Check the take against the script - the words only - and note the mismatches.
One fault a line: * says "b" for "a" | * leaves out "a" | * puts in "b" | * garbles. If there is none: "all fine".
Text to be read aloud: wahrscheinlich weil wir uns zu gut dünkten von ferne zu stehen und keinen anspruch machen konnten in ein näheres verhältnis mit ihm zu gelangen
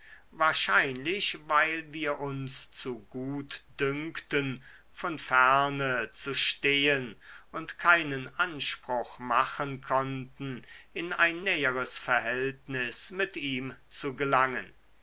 all fine